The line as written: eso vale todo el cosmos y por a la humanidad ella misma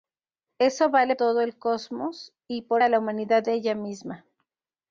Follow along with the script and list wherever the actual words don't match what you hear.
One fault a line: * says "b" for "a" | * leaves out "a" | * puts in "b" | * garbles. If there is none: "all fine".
all fine